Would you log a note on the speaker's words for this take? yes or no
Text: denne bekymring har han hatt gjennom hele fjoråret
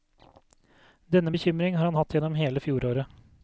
no